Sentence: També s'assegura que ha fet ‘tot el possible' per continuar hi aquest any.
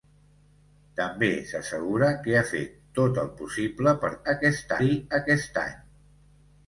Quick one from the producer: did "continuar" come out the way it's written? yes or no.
no